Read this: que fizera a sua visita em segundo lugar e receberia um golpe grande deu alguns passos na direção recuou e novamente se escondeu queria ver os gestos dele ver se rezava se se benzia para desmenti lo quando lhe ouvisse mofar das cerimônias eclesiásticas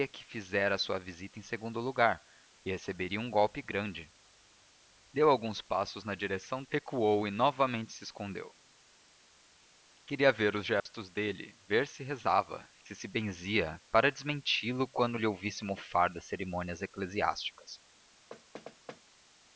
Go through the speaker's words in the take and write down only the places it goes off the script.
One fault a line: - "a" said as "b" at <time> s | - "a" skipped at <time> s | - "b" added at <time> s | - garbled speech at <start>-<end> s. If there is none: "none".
none